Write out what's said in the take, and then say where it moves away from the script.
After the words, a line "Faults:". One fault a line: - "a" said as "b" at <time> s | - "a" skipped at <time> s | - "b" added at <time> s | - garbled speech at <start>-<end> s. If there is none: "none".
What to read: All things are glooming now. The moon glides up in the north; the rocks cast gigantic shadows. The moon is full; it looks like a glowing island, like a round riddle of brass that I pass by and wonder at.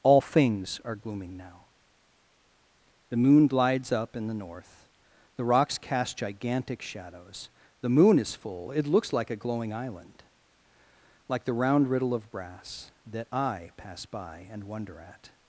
All things are glooming now. The moon glides up in the north; the rocks cast gigantic shadows. The moon is full; it looks like a glowing island, like the round riddle of brass that I pass by and wonder at.
Faults:
- "a" said as "the" at 11.4 s